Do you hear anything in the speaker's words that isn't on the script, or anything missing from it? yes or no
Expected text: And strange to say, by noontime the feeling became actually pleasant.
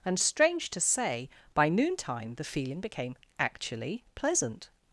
no